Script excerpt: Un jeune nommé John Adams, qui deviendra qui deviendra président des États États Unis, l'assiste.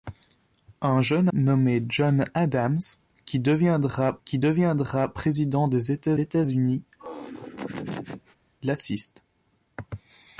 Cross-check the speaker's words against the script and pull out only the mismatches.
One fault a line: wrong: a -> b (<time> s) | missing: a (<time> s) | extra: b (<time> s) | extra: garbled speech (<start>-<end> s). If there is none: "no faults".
no faults